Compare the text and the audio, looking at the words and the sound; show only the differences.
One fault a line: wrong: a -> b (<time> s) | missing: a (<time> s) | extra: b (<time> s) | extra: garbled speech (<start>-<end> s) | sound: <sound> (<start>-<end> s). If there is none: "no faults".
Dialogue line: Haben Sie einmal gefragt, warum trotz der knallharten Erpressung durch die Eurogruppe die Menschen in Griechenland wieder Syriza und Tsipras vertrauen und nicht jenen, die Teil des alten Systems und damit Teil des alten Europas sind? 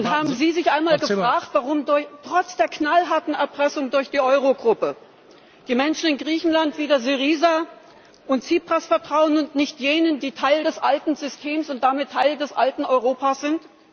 extra: sich (0.5 s)